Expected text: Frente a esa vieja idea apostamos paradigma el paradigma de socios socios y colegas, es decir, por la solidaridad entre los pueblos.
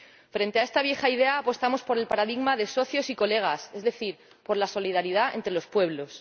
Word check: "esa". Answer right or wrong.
wrong